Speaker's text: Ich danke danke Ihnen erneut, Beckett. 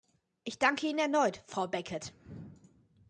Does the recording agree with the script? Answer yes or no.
no